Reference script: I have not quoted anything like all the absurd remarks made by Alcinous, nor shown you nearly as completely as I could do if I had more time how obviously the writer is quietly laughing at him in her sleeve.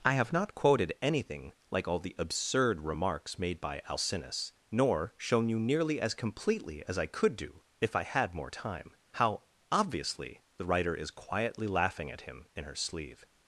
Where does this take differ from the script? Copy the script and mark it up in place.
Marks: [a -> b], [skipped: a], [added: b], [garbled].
I have not quoted anything like all the absurd remarks made by Alcinous, nor shown you nearly as completely as I could do if I had more time how obviously the writer is quietly laughing at him in her sleeve.